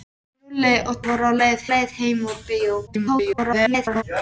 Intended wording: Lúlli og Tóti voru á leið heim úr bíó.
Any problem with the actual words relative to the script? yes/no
yes